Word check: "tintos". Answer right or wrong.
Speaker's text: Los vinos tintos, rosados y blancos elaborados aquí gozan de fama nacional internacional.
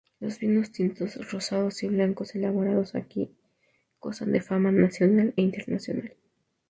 right